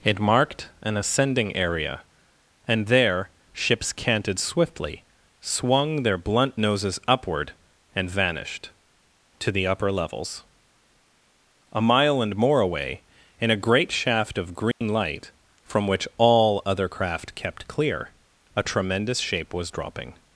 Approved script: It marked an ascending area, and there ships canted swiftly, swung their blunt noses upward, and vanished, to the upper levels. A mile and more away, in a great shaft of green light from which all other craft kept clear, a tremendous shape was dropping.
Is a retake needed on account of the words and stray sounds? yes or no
yes